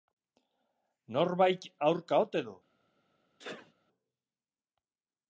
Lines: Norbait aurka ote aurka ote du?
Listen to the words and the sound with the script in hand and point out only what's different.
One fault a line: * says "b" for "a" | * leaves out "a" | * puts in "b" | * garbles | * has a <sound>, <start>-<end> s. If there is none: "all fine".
* leaves out "aurka ote"
* has a sneeze, 3.4-3.7 s